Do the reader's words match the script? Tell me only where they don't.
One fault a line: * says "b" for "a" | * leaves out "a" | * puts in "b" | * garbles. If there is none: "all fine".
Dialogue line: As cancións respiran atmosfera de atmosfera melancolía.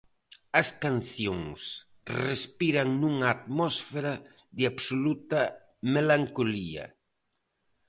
* puts in "nunha"
* says "absoluta" for "atmosfera"